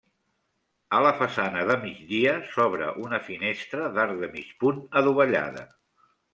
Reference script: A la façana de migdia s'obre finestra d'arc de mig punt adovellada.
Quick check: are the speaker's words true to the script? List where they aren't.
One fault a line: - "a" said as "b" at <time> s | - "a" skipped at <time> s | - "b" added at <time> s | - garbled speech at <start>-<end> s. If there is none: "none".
- "una" added at 3.1 s